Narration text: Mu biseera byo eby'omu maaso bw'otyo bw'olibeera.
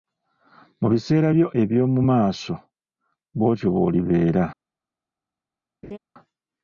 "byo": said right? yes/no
yes